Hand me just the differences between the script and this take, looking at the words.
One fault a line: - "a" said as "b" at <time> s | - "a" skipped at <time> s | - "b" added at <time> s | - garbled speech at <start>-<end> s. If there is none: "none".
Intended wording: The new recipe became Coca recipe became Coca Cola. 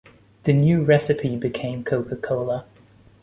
- "recipe became Coca" skipped at 2.1 s